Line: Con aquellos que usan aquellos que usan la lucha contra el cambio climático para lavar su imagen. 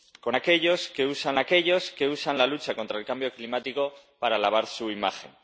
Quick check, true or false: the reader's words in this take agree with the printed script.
true